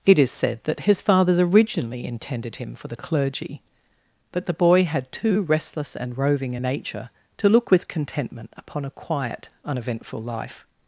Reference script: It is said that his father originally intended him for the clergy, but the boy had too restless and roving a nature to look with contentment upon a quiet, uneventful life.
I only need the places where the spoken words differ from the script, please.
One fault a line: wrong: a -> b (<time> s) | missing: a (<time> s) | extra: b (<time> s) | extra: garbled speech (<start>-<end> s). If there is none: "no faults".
wrong: father -> fathers (1.0 s)